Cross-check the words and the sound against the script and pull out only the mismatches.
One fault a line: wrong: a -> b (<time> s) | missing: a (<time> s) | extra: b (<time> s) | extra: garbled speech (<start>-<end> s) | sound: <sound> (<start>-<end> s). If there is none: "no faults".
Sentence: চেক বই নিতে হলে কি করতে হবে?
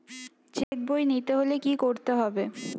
sound: dropout (0.6-0.7 s)